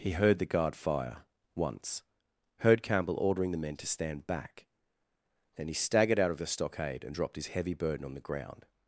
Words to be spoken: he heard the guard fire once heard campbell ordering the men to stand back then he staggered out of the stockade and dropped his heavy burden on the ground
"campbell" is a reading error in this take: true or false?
false